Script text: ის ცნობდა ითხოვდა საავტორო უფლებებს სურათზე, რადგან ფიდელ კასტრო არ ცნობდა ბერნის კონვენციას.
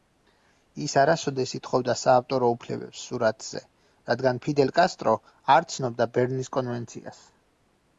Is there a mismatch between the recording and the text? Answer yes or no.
yes